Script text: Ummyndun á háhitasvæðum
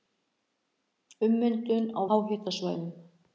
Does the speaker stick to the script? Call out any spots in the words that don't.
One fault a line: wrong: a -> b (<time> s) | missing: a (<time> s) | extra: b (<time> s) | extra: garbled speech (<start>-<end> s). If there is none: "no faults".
no faults